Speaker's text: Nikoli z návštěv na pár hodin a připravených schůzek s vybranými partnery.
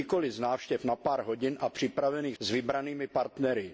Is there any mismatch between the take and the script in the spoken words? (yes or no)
yes